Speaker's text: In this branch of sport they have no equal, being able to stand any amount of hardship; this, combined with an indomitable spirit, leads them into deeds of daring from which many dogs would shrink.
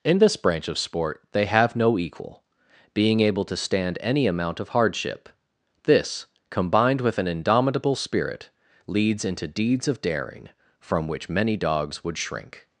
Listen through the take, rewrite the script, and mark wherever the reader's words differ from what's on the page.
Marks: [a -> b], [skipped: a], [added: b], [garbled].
In this branch of sport they have no equal, being able to stand any amount of hardship; this, combined with an indomitable spirit, leads [skipped: them] into deeds of daring from which many dogs would shrink.